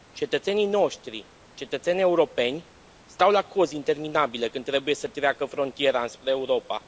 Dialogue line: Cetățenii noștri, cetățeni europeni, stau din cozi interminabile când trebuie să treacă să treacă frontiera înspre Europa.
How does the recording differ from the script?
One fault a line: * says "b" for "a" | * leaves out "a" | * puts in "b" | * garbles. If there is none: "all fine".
* says "la" for "din"
* leaves out "să treacă"